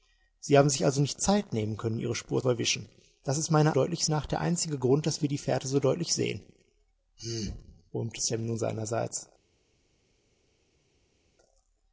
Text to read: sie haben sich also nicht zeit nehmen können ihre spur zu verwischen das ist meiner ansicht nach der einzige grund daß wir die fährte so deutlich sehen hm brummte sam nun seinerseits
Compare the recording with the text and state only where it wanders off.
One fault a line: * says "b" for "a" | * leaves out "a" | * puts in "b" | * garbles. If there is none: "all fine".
* leaves out "zu"
* says "deutlich" for "ansicht"